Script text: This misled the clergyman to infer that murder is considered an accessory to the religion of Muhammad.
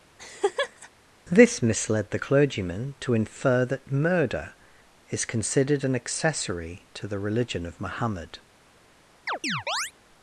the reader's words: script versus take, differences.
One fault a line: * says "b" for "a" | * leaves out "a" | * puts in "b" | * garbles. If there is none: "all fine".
all fine